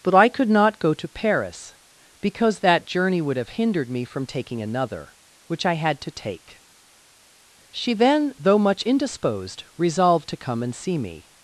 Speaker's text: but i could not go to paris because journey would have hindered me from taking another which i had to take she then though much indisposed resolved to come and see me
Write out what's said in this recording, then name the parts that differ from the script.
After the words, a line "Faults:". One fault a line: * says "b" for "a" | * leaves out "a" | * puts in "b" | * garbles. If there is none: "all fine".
but i could not go to paris because that journey would have hindered me from taking another which i had to take she then though much indisposed resolved to come and see me
Faults:
* puts in "that"